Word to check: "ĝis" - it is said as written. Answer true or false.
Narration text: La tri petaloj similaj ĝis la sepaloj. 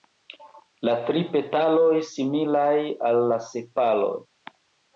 false